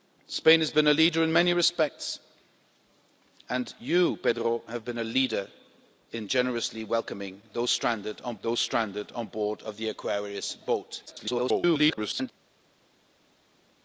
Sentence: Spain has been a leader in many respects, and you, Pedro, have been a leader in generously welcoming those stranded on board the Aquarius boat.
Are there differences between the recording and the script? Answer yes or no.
yes